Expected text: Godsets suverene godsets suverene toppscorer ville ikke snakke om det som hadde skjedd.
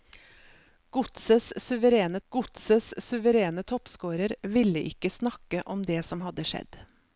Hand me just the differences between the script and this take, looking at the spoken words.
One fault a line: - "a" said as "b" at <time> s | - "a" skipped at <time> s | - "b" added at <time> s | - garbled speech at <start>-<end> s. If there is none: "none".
none